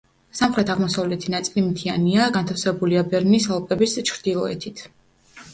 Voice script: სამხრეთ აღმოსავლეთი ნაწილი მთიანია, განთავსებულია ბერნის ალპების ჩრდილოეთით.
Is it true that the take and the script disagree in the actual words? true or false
false